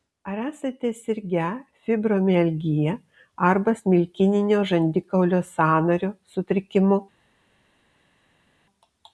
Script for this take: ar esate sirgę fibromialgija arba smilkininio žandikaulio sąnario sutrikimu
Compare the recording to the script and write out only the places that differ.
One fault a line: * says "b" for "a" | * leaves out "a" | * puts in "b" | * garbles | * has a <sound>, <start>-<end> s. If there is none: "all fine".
all fine